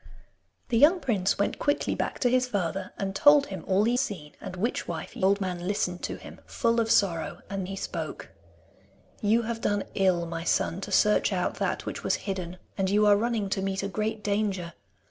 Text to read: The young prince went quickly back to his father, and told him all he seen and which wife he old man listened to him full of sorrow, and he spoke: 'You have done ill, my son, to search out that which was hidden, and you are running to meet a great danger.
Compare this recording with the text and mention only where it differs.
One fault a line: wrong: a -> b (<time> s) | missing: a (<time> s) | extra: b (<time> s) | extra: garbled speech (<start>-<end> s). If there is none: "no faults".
no faults